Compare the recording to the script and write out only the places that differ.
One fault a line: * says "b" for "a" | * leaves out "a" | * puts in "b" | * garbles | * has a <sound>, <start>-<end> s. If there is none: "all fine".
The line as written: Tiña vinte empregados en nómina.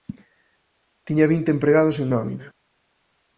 all fine